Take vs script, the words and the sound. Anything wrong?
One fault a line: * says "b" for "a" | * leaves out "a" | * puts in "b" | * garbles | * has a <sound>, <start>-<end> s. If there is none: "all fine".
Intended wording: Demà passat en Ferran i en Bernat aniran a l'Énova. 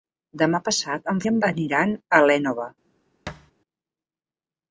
* leaves out "Ferran"
* leaves out "Bernat"
* has a thud, 3.3-3.5 s